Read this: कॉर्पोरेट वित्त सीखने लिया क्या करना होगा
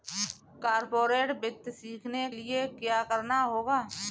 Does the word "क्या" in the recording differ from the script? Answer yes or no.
no